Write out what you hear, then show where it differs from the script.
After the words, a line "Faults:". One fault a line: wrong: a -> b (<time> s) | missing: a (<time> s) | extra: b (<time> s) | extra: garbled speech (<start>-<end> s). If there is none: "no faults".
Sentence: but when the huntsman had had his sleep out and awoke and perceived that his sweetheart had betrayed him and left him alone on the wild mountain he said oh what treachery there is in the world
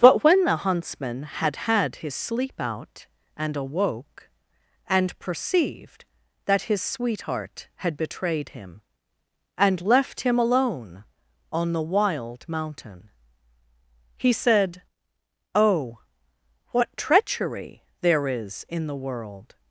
but when the huntsman had had his sleep out and awoke and perceived that his sweetheart had betrayed him and left him alone on the wild mountain he said oh what treachery there is in the world
Faults:
no faults